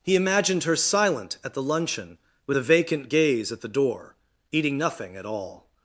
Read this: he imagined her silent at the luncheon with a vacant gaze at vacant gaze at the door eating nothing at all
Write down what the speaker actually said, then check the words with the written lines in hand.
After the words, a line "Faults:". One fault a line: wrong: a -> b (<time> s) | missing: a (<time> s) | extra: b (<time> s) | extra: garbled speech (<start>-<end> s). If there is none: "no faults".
he imagined her silent at the luncheon with a vacant gaze at the door eating nothing at all
Faults:
missing: vacant gaze at (3.6 s)